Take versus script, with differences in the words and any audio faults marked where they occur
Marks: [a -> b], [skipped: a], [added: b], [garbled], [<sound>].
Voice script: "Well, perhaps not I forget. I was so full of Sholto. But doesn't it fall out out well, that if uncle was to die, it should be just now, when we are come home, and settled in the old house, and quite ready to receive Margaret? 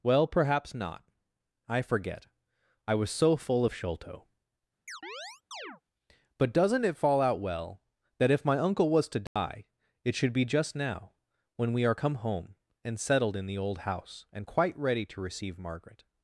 "Well, perhaps not I forget. I was so full of Sholto. [chirp] But doesn't it fall out [skipped: out] well, that if [added: my] uncle was to die, [dropout] it should be just now, when we are come home, and settled in the old house, and quite ready to receive Margaret?